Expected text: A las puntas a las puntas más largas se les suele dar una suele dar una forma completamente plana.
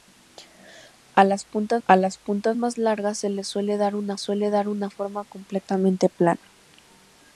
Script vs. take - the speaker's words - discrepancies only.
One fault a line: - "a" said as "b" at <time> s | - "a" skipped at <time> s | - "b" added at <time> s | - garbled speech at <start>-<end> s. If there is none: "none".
none